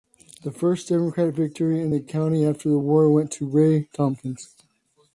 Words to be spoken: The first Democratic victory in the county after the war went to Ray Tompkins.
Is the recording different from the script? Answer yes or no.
no